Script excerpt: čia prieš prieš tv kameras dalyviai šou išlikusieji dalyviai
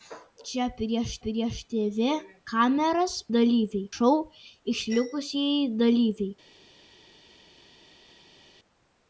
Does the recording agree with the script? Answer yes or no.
yes